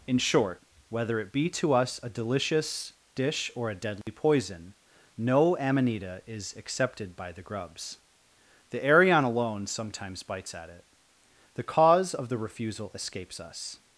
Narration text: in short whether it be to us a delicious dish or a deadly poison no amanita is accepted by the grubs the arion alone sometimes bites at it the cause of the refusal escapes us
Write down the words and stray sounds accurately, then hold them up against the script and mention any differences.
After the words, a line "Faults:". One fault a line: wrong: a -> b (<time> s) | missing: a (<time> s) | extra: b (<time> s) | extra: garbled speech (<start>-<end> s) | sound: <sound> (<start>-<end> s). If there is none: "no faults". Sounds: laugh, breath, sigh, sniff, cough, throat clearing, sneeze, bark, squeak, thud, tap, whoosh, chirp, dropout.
in short whether it be to us a delicious dish or a deadly poison no amanita is accepted by the grubs the arion alone sometimes bites at it the cause of the refusal escapes us
Faults:
sound: dropout (4.0-4.1 s)